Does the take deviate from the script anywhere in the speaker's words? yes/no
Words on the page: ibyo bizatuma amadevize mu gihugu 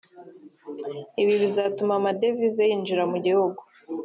yes